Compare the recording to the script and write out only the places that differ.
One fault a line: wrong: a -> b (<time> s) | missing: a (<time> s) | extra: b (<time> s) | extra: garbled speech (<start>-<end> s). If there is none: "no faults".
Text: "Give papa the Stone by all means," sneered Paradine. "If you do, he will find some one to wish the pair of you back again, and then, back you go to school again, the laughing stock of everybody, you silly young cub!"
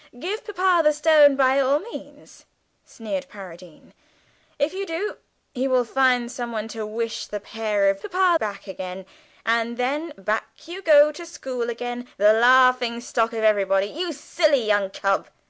wrong: you -> papa (8.0 s)